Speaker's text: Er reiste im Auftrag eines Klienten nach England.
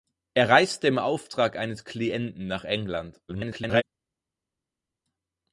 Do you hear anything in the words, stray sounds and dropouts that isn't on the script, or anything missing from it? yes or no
yes